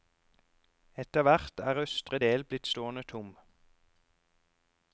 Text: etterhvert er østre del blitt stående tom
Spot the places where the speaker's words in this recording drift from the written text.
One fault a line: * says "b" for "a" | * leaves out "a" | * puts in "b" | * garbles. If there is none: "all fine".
all fine